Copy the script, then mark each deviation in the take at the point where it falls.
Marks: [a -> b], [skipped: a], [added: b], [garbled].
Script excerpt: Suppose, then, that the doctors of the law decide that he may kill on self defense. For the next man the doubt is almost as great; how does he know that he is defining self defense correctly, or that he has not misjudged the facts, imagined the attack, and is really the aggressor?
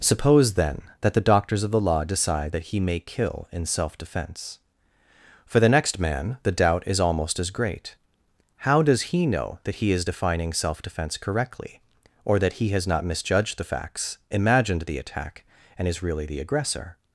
Suppose, then, that the doctors of the law decide that he may kill [on -> in] self defense. For the next man the doubt is almost as great; how does he know that he is defining self defense correctly, or that he has not misjudged the facts, imagined the attack, and is really the aggressor?